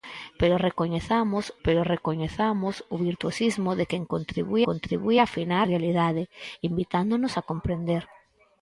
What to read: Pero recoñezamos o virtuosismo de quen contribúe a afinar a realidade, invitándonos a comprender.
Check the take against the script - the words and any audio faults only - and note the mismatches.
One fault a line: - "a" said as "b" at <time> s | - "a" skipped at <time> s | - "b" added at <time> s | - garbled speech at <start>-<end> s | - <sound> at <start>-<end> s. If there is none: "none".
- "pero recoñezamos" added at 1.6 s
- "contribúe" added at 4.7 s
- "a" skipped at 5.7 s